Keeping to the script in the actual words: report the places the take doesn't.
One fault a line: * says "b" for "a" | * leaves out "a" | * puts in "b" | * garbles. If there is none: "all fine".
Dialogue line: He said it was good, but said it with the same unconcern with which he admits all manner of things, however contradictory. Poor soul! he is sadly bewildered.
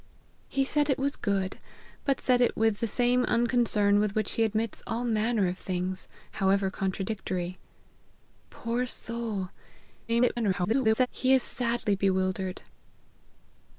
* garbles